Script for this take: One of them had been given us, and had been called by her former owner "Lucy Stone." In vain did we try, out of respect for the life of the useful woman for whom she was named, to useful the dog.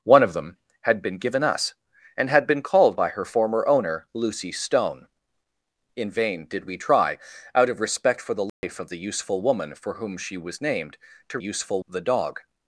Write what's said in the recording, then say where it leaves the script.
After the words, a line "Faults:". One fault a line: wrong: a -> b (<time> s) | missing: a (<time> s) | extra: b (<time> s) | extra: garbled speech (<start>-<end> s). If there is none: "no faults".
One of them had been given us, and had been called by her former owner "Lucy Stone." In vain did we try, out of respect for the life of the useful woman for whom she was named, to useful the dog.
Faults:
no faults